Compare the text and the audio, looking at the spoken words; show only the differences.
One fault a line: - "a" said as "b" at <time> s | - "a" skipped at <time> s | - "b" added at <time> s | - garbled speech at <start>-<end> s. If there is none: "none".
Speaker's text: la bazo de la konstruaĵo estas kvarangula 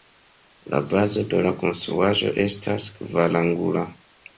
none